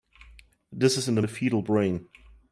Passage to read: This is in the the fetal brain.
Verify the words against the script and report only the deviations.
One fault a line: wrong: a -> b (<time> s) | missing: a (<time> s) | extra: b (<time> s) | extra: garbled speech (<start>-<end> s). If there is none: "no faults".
no faults